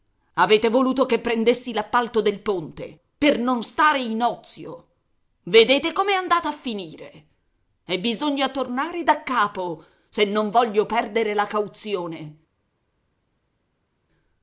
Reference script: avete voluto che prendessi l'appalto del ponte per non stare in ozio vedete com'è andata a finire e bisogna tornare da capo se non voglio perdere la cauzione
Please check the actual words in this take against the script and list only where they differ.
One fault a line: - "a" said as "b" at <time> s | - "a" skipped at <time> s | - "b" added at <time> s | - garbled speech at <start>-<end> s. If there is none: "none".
none